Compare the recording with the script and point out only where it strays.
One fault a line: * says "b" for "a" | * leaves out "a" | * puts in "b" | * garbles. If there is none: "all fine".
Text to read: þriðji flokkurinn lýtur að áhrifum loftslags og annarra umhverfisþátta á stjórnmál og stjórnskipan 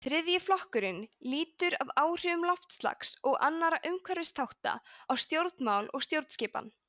all fine